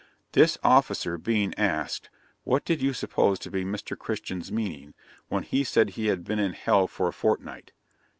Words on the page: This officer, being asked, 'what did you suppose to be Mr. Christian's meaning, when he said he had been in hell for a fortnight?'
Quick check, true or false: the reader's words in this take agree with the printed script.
true